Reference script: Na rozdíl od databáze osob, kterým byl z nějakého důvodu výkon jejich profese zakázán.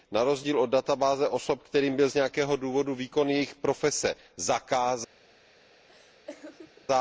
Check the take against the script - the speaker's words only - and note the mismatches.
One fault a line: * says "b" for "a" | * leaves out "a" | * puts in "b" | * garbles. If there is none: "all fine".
all fine